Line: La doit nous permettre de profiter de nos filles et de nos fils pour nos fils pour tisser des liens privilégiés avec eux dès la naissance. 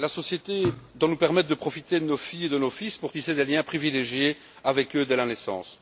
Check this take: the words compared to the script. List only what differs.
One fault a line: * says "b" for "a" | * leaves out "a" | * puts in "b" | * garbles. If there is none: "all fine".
* puts in "société"
* leaves out "nos fils pour"